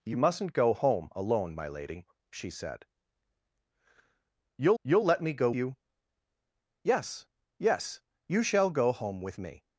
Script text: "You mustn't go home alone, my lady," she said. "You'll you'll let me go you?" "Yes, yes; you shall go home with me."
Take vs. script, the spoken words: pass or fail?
pass